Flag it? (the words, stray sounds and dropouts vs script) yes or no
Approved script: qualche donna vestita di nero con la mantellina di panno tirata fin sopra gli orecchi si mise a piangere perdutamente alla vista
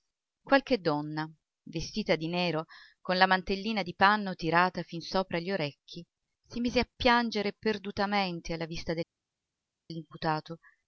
no